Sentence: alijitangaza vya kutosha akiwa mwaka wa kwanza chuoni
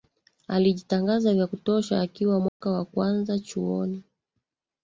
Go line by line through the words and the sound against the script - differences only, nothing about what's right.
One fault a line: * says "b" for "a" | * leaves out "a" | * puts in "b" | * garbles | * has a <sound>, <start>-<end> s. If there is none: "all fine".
* has a dropout, 2.5-2.6 s